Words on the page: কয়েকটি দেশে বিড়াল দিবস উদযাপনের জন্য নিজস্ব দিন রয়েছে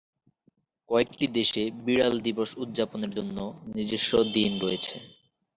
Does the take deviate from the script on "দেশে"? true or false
false